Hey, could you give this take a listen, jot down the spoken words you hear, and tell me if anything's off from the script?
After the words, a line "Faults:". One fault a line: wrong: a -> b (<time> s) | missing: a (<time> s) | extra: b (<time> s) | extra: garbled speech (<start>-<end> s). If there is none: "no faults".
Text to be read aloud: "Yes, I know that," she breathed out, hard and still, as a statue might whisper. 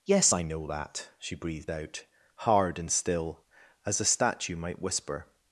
"Yes, I know that," she breathed out, hard and still, as a statue might whisper.
Faults:
no faults